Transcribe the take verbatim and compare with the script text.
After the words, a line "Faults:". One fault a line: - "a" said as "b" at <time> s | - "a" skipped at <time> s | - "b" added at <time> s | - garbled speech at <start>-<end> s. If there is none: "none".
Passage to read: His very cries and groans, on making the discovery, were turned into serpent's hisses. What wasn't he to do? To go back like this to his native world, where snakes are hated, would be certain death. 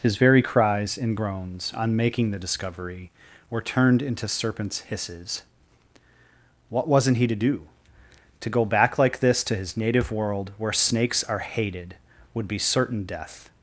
His very cries and groans, on making the discovery, were turned into serpent's hisses. What wasn't he to do? To go back like this to his native world, where snakes are hated, would be certain death.
Faults:
none